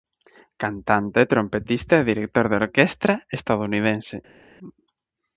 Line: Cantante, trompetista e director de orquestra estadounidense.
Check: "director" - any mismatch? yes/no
no